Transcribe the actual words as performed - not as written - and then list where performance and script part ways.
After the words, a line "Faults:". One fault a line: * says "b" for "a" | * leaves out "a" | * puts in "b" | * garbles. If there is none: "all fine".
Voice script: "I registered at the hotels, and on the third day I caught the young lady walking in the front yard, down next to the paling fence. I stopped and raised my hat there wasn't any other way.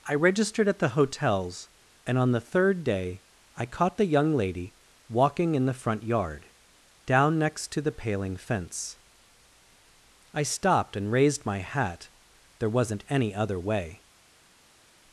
"I registered at the hotels, and on the third day I caught the young lady walking in the front yard, down next to the paling fence. I stopped and raised my hat there wasn't any other way.
Faults:
all fine